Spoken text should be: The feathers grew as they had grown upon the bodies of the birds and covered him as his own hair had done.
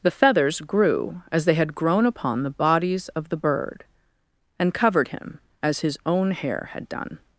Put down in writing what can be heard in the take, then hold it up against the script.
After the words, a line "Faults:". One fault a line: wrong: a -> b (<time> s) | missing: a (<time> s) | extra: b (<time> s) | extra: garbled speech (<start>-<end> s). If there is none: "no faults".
The feathers grew as they had grown upon the bodies of the bird and covered him as his own hair had done.
Faults:
wrong: birds -> bird (3.4 s)